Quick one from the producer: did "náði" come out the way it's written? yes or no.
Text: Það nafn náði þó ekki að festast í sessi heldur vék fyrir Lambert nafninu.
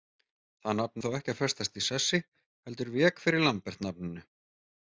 no